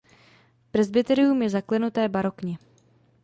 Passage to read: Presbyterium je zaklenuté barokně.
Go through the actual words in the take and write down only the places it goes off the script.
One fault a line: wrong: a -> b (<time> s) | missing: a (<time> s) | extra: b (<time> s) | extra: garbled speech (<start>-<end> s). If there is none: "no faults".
no faults